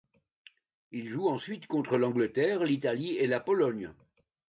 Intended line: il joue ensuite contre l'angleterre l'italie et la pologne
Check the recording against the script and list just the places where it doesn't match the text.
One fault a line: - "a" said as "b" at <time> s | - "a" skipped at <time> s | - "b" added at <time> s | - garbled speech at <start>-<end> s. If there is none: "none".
none